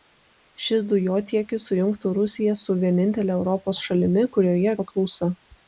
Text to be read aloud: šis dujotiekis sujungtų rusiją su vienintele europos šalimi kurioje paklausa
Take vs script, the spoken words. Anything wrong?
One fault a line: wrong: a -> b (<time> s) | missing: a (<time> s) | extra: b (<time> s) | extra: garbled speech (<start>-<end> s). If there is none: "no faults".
no faults